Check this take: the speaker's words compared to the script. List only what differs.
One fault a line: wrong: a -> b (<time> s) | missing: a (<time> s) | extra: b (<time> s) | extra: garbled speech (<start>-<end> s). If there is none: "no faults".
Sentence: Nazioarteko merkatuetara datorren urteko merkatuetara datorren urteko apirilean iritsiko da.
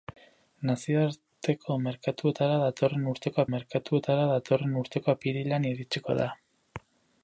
no faults